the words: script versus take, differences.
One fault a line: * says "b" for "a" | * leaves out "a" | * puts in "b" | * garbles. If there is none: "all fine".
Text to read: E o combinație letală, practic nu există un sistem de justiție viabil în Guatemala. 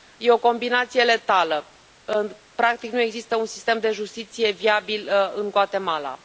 all fine